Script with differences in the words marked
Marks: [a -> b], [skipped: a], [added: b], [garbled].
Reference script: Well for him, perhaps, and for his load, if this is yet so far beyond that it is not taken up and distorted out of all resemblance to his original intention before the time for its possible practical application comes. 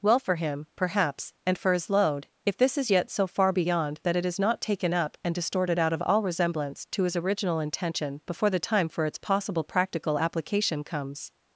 Well for him, perhaps, and for his load, if this is yet so far beyond that it is not taken up and distorted out of all resemblance to his original intention before the time for its possible practical application comes.